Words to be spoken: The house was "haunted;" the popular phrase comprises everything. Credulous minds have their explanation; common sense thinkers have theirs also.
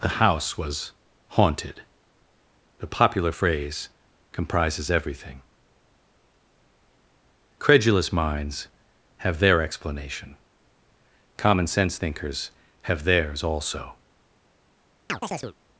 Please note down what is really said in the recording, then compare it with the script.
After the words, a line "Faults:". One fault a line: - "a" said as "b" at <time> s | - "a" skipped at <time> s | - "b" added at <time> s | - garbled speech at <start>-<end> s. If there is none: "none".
The house was "haunted;" the popular phrase comprises everything. Credulous minds have their explanation; common sense thinkers have theirs also.
Faults:
none